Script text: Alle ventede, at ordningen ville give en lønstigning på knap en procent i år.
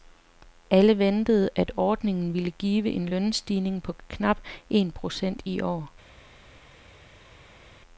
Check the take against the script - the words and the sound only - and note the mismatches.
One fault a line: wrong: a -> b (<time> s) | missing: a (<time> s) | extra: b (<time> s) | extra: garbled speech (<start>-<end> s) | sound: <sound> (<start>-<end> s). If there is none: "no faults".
no faults